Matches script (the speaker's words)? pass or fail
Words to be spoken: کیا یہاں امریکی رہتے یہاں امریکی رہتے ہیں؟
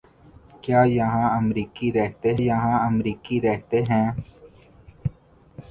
pass